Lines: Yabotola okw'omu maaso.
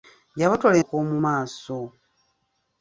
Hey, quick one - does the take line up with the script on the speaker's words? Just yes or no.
yes